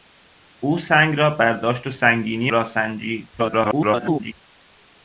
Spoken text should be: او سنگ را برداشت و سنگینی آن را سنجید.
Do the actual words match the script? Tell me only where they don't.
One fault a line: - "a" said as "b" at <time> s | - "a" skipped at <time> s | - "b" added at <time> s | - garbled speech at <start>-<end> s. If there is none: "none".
- "آن" skipped at 2.5 s
- garbled speech at 3.4-4.3 s